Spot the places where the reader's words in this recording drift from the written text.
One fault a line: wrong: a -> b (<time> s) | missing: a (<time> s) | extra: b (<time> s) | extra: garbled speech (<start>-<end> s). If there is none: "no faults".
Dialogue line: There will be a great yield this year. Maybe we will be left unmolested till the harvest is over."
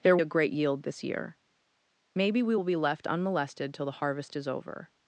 missing: will be (0.2 s)